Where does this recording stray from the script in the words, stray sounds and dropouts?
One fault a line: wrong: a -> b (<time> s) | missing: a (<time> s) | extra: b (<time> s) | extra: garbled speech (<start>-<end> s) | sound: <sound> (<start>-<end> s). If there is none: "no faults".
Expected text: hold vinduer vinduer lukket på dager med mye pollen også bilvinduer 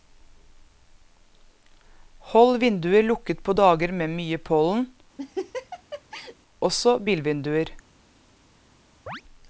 missing: vinduer (3.0 s)
sound: laugh (5.2-6.4 s)
sound: chirp (9.1-9.2 s)